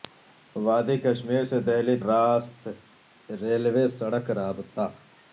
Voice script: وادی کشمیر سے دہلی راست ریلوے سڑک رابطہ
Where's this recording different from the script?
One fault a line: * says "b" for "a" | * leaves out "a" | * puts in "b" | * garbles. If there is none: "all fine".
all fine